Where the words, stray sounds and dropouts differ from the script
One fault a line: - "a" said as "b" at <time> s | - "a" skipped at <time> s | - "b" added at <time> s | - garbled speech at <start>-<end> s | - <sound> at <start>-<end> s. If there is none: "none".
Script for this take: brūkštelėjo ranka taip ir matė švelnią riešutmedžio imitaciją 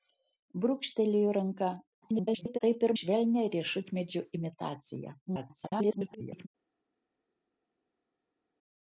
- garbled speech at 2.0-2.6 s
- "matė" skipped at 3.0 s
- garbled speech at 5.3-6.5 s